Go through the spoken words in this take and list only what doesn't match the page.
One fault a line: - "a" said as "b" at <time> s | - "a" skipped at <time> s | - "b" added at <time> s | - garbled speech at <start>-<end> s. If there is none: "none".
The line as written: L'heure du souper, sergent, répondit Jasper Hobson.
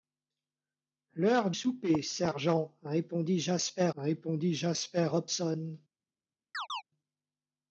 - "du" skipped at 1.5 s
- "répondit Jasper" added at 4.0 s